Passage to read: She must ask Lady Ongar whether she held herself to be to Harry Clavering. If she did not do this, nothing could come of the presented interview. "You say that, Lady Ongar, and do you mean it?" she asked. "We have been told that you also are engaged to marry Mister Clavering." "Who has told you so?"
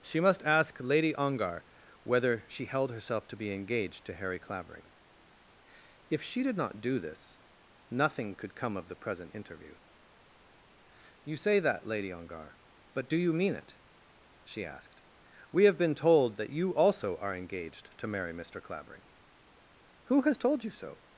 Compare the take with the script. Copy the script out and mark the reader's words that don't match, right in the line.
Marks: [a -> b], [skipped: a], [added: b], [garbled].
She must ask Lady Ongar whether she held herself to be [added: engaged] to Harry Clavering. If she did not do this, nothing could come of the [presented -> present] interview. "You say that, Lady Ongar, [and -> but] do you mean it?" she asked. "We have been told that you also are engaged to marry Mister Clavering." "Who has told you so?"